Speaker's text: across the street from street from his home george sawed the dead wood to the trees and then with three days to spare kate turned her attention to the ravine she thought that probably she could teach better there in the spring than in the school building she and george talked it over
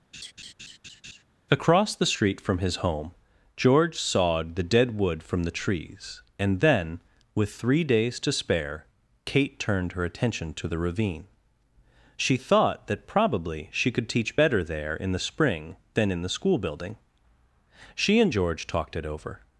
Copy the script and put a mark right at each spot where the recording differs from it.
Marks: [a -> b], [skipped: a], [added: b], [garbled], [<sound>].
[laugh] across the street from [skipped: street from] his home george sawed the dead wood [to -> from] the trees and then with three days to spare kate turned her attention to the ravine she thought that probably she could teach better there in the spring than in the school building she and george talked it over